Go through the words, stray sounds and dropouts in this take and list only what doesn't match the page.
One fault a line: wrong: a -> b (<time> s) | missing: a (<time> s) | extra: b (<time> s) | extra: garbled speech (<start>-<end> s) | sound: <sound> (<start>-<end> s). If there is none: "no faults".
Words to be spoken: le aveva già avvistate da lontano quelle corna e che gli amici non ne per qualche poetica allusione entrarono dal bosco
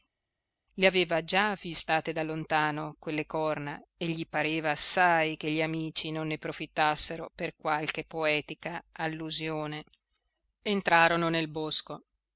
extra: gli pareva assai (4.1 s)
extra: profittassero (6.4 s)
wrong: dal -> nel (11.3 s)